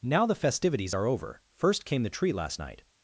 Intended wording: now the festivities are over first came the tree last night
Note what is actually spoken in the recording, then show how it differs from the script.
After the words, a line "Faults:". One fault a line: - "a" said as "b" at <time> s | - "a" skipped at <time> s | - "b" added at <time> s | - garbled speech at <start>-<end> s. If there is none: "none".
now the festivities are over first came the tree last night
Faults:
none